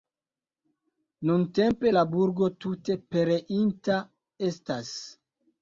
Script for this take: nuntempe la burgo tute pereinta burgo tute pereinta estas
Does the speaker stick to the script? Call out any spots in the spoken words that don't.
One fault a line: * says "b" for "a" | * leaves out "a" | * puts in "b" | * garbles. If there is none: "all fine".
* leaves out "burgo tute pereinta"